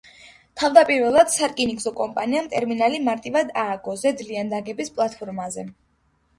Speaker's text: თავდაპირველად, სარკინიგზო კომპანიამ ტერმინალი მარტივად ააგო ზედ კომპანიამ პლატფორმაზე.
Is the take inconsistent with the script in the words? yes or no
yes